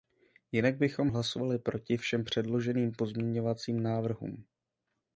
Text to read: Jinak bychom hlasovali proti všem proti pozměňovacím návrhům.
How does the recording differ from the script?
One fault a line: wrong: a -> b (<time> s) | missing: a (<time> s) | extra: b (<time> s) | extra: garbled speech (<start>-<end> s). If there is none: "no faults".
wrong: proti -> předloženým (2.2 s)